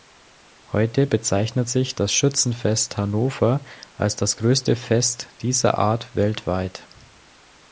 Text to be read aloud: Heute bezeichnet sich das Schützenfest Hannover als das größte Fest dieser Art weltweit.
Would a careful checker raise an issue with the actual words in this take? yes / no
no